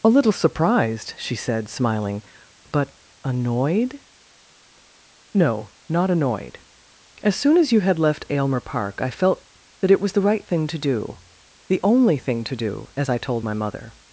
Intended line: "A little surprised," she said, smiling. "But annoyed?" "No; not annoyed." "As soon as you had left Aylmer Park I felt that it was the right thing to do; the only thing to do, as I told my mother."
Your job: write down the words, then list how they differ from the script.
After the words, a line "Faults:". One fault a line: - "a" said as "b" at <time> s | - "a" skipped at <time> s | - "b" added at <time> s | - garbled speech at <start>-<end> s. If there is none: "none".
"A little surprised," she said, smiling. "But annoyed?" "No; not annoyed." "As soon as you had left Aylmer Park I felt that it was the right thing to do; the only thing to do, as I told my mother."
Faults:
none